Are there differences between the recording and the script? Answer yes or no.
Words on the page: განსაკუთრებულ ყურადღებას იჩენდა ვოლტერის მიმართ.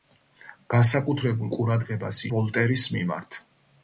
yes